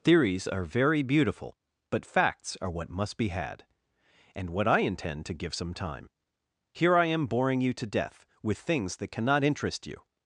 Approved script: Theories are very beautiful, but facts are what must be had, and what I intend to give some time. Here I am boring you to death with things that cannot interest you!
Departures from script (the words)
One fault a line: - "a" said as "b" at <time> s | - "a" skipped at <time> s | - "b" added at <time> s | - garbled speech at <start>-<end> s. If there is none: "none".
none